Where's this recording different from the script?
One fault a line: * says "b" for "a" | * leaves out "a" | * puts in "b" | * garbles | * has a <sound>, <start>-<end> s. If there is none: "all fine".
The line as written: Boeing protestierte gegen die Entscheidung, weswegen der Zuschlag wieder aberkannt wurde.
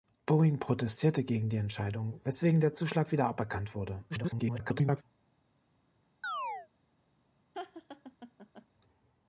* garbles
* has a chirp, 6.2-6.7 s
* has a laugh, 7.5-8.7 s